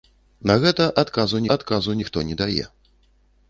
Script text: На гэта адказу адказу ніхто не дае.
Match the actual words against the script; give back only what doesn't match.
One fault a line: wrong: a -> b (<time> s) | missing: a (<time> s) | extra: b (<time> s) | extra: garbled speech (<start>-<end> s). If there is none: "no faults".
no faults